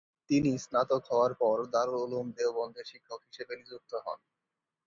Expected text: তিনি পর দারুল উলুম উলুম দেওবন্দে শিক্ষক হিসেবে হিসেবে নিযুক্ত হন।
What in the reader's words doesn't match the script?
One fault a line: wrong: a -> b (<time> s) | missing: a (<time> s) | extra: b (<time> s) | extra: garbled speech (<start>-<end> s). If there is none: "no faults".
extra: স্নাতক হওয়ার (0.6 s)
missing: উলুম (2.3 s)
missing: হিসেবে (3.5 s)